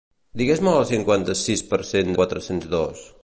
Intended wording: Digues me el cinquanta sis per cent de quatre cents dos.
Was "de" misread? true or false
true